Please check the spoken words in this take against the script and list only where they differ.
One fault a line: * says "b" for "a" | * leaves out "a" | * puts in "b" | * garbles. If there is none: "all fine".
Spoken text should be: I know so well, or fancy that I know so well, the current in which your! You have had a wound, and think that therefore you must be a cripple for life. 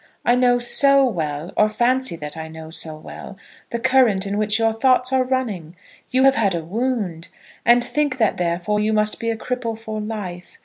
* puts in "thoughts are running"